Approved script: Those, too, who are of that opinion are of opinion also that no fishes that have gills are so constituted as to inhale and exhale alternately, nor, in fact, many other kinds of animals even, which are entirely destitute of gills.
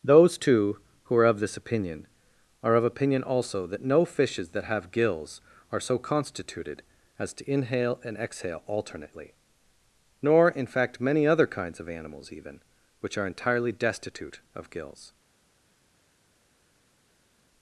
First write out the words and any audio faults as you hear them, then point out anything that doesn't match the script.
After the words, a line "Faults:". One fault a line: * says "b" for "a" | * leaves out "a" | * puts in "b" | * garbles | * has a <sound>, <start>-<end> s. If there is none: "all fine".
Those, too, who are of this opinion are of opinion also that no fishes that have gills are so constituted as to inhale and exhale alternately, nor, in fact, many other kinds of animals even, which are entirely destitute of gills.
Faults:
* says "this" for "that"